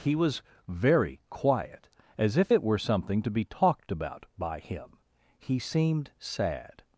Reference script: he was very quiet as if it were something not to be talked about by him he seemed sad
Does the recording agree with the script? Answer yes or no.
no